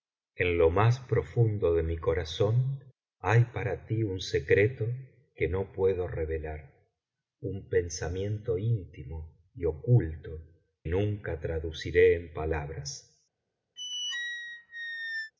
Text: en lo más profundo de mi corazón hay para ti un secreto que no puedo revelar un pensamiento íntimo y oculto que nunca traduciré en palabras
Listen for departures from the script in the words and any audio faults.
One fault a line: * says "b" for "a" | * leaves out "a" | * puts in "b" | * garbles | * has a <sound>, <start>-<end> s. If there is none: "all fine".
* leaves out "que"
* has a squeak, 13.8-15.3 s